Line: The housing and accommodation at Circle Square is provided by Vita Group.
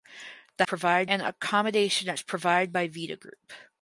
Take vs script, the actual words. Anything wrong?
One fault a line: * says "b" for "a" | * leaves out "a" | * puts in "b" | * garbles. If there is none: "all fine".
* says "provided" for "housing"
* leaves out "Circle Square"